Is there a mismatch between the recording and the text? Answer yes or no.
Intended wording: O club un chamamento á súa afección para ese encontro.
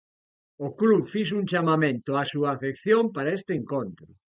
yes